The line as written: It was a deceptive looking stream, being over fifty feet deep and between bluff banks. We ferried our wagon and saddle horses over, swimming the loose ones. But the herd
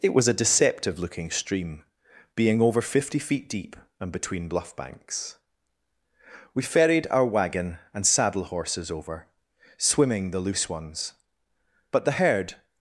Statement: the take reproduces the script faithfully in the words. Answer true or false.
true